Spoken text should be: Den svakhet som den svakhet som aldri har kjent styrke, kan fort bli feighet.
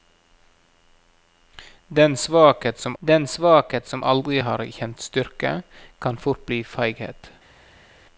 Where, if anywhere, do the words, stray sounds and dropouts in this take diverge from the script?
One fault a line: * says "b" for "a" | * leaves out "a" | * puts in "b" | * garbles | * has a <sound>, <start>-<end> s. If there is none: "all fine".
all fine